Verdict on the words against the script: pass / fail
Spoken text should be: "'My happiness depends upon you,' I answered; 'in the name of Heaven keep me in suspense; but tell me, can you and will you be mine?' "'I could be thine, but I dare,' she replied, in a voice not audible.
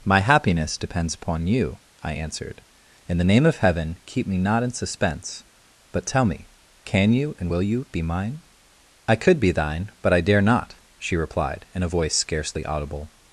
fail